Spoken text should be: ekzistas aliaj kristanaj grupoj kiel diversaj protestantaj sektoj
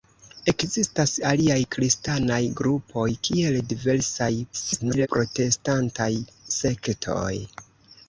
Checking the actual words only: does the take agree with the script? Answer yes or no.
no